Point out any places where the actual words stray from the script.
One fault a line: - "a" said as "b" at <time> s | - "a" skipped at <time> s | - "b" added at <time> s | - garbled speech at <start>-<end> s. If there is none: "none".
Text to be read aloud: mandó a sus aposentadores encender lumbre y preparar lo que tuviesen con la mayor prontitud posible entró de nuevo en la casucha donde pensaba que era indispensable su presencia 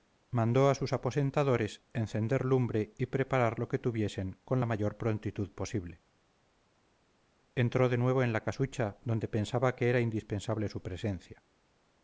none